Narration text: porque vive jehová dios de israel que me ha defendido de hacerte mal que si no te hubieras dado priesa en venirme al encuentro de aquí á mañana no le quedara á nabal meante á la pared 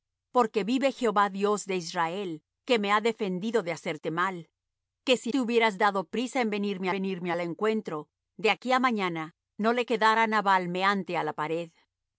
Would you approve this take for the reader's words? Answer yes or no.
no